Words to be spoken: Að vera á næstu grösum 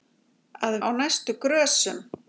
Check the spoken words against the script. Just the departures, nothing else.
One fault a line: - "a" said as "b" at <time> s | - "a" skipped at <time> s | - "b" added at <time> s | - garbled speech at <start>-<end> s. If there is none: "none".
- "vera" skipped at 0.8 s